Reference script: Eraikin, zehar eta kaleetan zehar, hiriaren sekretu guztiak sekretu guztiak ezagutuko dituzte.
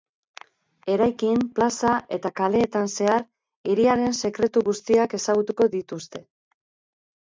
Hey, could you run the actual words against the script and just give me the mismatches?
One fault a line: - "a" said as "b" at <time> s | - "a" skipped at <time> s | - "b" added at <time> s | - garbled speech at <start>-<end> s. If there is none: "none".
- "zehar" said as "plaza" at 1.6 s
- "sekretu guztiak" skipped at 5.2 s